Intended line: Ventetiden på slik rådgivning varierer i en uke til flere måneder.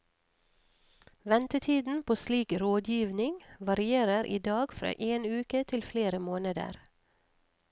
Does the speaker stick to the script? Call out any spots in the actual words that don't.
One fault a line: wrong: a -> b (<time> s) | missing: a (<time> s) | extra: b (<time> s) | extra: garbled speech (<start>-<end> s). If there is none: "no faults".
extra: dag fra (4.4 s)